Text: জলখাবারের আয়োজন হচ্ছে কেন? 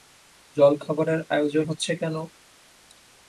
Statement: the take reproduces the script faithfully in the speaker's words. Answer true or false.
true